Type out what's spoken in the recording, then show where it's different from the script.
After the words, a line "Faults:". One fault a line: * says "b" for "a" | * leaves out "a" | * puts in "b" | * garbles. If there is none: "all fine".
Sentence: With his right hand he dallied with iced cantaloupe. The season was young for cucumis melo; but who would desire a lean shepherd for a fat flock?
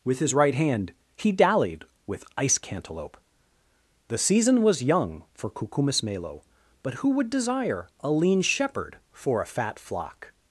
With his right hand he dallied with ice cantaloupe. The season was young for cucumis melo; but who would desire a lean shepherd for a fat flock?
Faults:
* says "ice" for "iced"